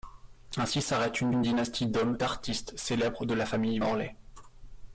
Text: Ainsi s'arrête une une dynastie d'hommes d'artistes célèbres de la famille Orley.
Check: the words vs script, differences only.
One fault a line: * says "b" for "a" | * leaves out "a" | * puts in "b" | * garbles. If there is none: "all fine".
all fine